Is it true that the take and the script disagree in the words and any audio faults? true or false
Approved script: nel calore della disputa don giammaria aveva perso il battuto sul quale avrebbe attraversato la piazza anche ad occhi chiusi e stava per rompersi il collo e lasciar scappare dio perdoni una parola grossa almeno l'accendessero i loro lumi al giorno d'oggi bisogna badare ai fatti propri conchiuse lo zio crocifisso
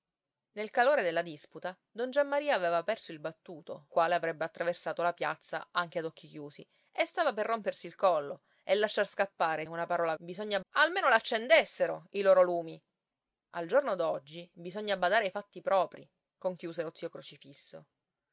true